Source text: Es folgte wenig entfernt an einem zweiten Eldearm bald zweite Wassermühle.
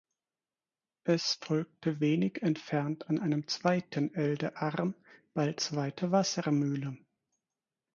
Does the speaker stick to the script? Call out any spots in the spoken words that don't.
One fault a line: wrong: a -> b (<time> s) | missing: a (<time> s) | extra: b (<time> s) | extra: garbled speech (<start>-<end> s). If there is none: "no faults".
no faults